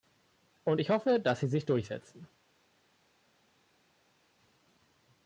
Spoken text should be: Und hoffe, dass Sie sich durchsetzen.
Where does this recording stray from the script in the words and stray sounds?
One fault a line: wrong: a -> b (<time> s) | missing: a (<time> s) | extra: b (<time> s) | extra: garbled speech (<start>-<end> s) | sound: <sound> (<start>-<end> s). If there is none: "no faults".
extra: ich (0.8 s)